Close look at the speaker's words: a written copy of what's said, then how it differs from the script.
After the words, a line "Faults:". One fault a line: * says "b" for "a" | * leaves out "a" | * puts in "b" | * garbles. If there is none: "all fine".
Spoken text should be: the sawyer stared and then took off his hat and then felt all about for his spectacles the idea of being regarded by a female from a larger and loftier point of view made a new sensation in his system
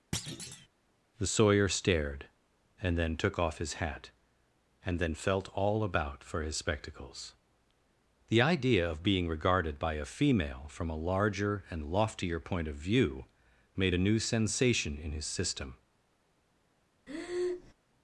the sawyer stared and then took off his hat and then felt all about for his spectacles the idea of being regarded by a female from a larger and loftier point of view made a new sensation in his system
Faults:
all fine